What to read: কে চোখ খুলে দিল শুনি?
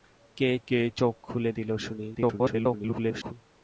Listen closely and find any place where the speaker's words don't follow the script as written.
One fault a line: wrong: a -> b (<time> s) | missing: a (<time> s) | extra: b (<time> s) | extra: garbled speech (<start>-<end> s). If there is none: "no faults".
extra: কে (0.7 s)
extra: garbled speech (2.1-3.3 s)